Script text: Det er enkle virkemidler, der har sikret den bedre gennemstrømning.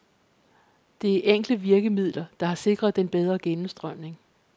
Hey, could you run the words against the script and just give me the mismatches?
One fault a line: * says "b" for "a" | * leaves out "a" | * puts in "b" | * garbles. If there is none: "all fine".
all fine